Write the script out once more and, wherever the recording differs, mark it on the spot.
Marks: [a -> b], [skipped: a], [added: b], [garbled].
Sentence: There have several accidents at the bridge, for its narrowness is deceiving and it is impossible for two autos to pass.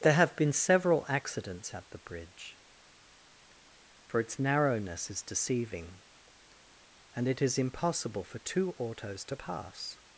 There have [added: been] several accidents at the bridge, for its narrowness is deceiving and it is impossible for two autos to pass.